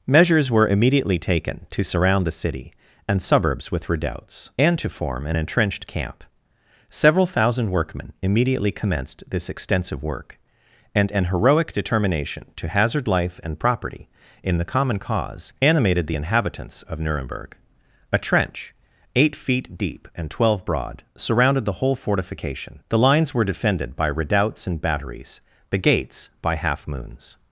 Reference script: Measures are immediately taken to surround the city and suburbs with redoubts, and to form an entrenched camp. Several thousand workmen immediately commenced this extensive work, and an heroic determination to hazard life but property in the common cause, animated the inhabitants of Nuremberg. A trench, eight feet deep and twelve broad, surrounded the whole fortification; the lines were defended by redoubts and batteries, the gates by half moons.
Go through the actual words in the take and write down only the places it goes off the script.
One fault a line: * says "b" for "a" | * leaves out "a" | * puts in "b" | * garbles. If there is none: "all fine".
* says "were" for "are"
* says "and" for "but"